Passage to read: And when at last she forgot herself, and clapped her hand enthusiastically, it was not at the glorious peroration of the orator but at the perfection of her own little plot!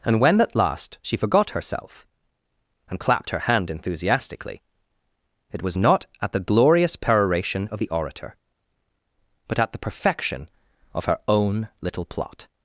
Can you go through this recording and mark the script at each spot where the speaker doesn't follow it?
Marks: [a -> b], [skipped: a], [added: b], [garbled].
And when at last she forgot herself, and clapped her hand enthusiastically, it was not at the glorious peroration of the orator but at the perfection of her own little plot!